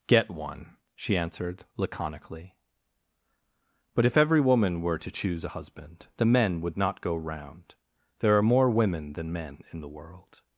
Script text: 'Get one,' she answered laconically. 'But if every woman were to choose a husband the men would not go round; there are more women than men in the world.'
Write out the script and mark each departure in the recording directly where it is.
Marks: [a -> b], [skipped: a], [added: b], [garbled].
'Get one,' she answered laconically. 'But if every woman were to choose a husband the men would not go round; there are more women than men in the world.'